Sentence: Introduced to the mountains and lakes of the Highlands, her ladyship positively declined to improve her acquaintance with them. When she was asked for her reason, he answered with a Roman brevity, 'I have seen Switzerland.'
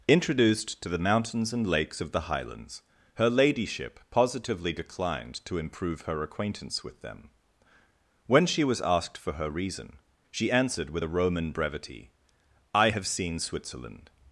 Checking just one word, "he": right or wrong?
wrong